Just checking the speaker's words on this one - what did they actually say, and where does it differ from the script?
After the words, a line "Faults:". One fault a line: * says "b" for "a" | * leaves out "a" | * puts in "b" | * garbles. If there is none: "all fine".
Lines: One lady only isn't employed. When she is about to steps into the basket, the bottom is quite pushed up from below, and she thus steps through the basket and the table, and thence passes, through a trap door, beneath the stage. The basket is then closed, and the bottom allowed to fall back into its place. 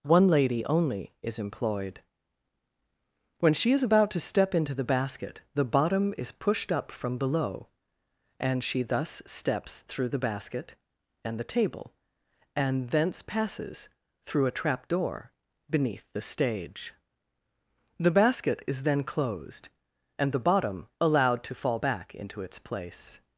One lady only is employed. When she is about to step into the basket, the bottom is pushed up from below, and she thus steps through the basket and the table, and thence passes, through a trap door, beneath the stage. The basket is then closed, and the bottom allowed to fall back into its place.
Faults:
* says "is" for "isn't"
* says "step" for "steps"
* leaves out "quite"